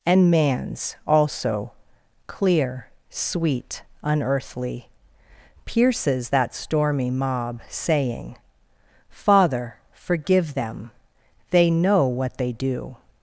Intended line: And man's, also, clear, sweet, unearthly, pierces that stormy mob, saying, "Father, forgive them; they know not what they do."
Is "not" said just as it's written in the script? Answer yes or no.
no